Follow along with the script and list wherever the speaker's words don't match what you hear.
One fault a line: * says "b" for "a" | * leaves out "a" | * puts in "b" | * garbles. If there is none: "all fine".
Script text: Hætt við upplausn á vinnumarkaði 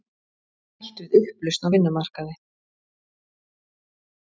all fine